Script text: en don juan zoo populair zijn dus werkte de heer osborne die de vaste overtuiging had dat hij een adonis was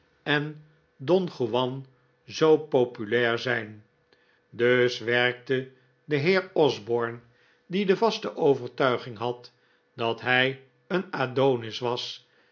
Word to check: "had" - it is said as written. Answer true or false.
true